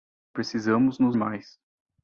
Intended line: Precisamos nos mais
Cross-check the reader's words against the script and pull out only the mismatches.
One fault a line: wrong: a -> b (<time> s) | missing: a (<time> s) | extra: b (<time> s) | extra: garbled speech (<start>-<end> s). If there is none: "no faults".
no faults